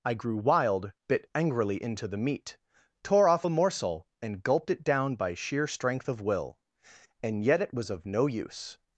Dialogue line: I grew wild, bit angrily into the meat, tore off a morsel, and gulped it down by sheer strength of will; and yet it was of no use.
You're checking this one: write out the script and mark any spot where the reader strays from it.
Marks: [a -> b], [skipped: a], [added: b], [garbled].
I grew wild, bit angrily into the meat, tore off a morsel, and gulped it down by sheer strength of will; and yet it was of no use.